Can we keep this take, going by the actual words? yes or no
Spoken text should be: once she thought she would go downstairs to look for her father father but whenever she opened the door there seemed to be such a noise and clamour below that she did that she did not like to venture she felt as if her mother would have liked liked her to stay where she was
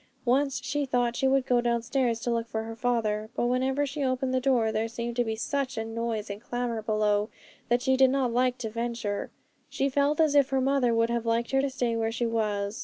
no